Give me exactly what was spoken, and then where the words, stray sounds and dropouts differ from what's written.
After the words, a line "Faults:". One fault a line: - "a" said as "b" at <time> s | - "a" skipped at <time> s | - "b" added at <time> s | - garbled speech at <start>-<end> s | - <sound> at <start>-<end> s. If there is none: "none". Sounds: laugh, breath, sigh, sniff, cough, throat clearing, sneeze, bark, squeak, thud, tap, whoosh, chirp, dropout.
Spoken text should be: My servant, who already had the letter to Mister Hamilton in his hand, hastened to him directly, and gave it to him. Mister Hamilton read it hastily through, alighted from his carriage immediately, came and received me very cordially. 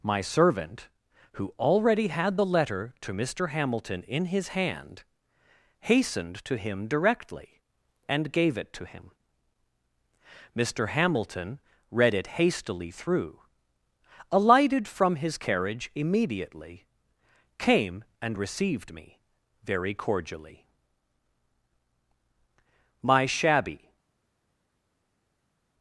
My servant, who already had the letter to Mister Hamilton in his hand, hastened to him directly, and gave it to him. Mister Hamilton read it hastily through, alighted from his carriage immediately, came and received me very cordially. My shabby
Faults:
- "My shabby" added at 23.0 s